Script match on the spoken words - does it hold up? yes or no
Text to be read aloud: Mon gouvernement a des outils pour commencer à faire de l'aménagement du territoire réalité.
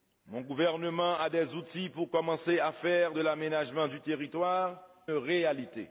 yes